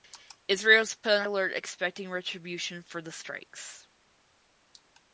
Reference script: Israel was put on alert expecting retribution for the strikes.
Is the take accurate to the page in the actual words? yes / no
yes